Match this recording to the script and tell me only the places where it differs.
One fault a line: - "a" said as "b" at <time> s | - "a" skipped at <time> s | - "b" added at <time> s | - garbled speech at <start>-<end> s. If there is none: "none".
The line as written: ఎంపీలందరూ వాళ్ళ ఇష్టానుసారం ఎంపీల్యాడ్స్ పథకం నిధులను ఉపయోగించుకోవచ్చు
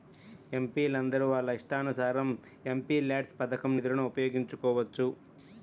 none